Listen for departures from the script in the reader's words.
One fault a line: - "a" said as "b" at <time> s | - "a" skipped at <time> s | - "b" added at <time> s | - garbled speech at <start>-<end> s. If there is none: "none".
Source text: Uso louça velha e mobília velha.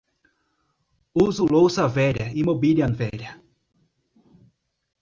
none